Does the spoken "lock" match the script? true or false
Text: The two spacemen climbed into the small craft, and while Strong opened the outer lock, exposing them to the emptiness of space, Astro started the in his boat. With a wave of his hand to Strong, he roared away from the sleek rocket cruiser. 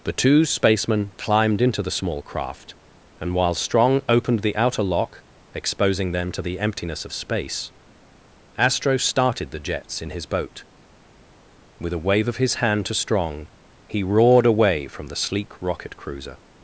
true